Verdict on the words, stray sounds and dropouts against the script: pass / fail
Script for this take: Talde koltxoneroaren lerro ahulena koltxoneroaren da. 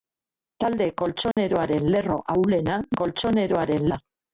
fail